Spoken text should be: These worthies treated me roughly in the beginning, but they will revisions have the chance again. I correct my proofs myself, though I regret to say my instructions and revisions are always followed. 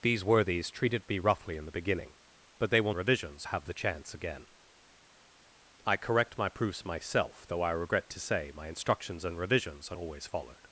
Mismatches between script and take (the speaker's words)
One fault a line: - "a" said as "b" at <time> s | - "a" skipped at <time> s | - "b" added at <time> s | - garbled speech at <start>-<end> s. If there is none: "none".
none